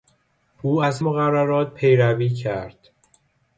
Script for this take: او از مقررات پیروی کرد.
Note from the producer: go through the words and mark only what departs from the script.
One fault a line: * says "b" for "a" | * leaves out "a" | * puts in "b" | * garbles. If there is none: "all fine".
all fine